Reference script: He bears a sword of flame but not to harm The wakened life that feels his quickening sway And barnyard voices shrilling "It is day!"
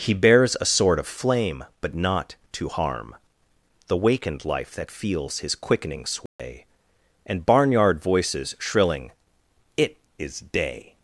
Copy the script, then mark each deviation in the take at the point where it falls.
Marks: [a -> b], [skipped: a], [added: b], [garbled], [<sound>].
He bears a sword of flame but not to harm The wakened life that feels his quickening sway [dropout] And barnyard voices shrilling "It is day!"